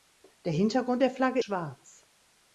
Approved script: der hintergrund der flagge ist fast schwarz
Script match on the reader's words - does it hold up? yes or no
no